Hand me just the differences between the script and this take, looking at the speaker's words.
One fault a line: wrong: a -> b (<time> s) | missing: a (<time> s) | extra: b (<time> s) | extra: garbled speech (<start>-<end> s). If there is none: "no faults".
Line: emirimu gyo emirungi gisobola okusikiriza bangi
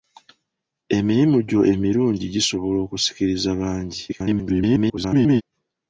extra: garbled speech (4.1-5.4 s)